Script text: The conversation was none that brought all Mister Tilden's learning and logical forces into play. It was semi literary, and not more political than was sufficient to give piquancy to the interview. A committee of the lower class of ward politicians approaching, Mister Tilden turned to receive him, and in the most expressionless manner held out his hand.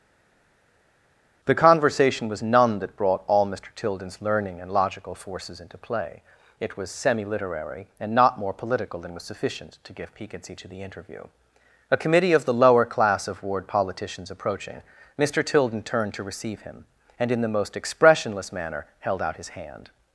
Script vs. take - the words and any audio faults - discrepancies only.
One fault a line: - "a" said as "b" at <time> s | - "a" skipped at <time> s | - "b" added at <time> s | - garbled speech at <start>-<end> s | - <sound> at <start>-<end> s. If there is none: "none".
none